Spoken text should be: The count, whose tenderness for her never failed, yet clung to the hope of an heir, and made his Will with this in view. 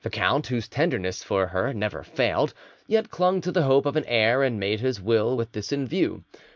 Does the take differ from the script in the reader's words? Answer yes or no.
no